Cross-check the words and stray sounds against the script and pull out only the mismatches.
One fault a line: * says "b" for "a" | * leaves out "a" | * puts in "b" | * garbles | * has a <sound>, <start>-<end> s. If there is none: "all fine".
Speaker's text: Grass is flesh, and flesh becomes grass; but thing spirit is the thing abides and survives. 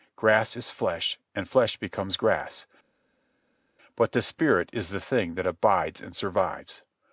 * says "the" for "thing"
* puts in "that"